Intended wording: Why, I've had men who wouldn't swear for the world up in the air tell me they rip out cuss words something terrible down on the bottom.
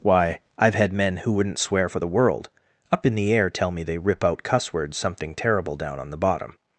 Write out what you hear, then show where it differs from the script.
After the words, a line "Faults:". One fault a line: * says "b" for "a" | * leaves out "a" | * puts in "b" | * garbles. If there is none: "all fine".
Why, I've had men who wouldn't swear for the world up in the air tell me they rip out cuss words something terrible down on the bottom.
Faults:
all fine